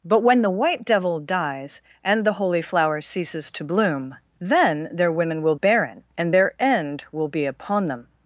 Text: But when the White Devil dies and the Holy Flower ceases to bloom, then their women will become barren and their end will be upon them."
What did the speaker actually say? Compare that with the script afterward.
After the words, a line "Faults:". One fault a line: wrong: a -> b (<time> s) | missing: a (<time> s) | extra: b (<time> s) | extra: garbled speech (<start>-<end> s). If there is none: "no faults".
But when the White Devil dies and the Holy Flower ceases to bloom, then their women will barren and their end will be upon them."
Faults:
missing: become (5.5 s)